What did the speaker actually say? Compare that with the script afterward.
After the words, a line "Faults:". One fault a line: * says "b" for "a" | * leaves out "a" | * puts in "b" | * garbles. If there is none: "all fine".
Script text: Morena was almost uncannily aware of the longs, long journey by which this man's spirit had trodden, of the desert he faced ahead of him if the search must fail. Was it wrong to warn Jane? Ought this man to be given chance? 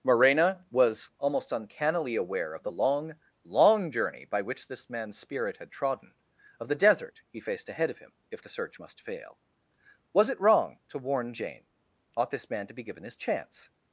Morena was almost uncannily aware of the long, long journey by which this man's spirit had trodden, of the desert he faced ahead of him if the search must fail. Was it wrong to warn Jane? Ought this man to be given his chance?
Faults:
* says "long" for "longs"
* puts in "his"